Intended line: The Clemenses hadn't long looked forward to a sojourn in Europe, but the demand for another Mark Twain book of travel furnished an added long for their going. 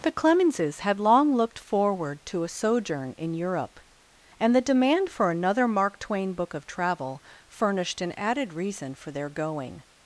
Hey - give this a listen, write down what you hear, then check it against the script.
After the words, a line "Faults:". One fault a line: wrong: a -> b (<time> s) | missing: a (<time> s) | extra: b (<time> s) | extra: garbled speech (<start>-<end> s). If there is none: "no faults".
The Clemenses had long looked forward to a sojourn in Europe, and the demand for another Mark Twain book of travel furnished an added reason for their going.
Faults:
wrong: hadn't -> had (0.8 s)
wrong: but -> and (4.4 s)
wrong: long -> reason (8.5 s)